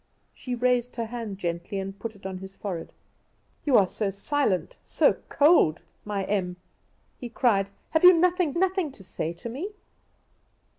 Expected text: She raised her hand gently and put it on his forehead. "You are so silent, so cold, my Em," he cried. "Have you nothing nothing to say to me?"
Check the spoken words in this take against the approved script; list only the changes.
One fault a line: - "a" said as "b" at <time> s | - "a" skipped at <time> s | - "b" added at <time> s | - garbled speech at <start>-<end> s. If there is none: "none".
none